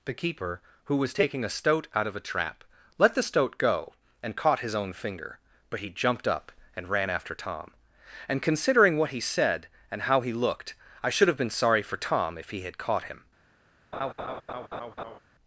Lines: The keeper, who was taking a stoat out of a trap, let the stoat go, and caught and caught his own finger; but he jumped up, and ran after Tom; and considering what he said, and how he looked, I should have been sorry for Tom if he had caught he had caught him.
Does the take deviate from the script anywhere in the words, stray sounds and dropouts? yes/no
yes